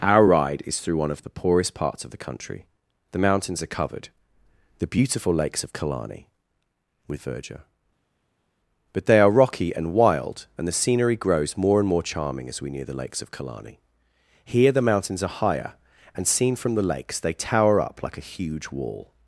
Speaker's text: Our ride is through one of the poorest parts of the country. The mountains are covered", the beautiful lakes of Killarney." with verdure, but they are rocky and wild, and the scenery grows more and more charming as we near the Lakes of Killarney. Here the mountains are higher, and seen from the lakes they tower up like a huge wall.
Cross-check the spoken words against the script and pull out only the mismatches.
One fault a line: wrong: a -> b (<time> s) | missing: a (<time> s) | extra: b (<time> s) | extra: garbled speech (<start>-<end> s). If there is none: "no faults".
no faults